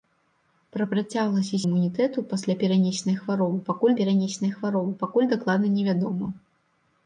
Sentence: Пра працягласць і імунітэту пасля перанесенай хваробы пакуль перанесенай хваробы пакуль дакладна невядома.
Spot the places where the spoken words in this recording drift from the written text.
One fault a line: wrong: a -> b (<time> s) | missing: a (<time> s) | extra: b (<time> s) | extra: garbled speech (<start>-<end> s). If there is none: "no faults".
no faults